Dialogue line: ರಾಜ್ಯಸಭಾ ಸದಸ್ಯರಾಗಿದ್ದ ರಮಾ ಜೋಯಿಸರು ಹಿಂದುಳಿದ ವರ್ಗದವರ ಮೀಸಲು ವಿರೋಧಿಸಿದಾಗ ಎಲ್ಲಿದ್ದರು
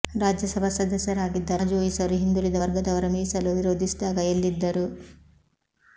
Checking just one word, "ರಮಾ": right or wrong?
wrong